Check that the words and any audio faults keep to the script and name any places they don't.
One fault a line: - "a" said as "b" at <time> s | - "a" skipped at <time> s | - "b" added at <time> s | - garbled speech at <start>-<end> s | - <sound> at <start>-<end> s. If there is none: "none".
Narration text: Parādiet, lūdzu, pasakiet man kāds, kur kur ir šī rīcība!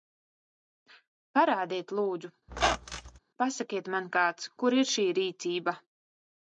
- squeak at 2.5-3.2 s
- "kur" skipped at 4.8 s